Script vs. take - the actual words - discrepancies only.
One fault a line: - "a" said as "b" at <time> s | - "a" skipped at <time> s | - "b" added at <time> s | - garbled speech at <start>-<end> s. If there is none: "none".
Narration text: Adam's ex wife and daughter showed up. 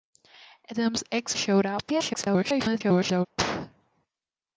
- "wife and daughter" skipped at 1.4 s
- garbled speech at 1.9-3.3 s